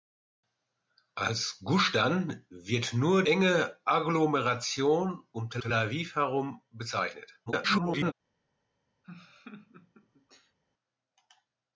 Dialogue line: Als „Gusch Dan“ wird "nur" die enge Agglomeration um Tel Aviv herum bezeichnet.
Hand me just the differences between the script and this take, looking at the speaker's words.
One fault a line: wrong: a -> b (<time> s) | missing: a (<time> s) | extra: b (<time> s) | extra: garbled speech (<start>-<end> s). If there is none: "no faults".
missing: die (3.2 s)
extra: Tel (5.6 s)
extra: garbled speech (7.5-8.1 s)